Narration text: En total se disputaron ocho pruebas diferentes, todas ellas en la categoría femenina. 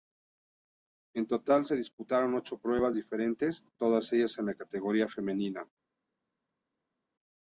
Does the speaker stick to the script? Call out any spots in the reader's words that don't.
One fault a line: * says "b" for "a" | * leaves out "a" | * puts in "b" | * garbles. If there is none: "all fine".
all fine